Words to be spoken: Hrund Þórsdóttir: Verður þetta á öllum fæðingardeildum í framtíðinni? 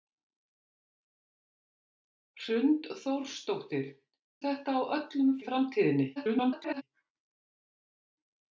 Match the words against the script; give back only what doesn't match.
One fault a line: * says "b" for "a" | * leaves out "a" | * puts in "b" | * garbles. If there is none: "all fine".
* leaves out "Verður"
* leaves out "fæðingardeildum"
* garbles